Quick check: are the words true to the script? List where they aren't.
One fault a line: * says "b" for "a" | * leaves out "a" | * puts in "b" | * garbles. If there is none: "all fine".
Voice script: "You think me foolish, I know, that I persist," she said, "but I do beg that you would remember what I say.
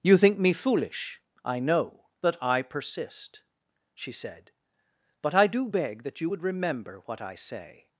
all fine